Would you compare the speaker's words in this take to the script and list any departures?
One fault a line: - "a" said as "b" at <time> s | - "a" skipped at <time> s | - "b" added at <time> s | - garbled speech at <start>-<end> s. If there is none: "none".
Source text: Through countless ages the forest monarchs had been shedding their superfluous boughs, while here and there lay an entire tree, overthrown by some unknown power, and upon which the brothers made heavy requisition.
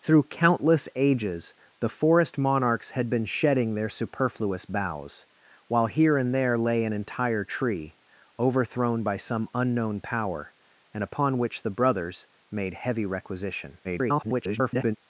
- garbled speech at 13.8-15.0 s